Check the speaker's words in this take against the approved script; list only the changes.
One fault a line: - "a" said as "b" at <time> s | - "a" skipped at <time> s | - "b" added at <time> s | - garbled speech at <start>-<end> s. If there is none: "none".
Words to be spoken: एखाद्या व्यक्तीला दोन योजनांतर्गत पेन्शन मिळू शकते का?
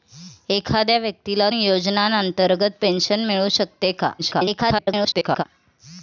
- "दोन" skipped at 1.5 s
- garbled speech at 4.2-5.4 s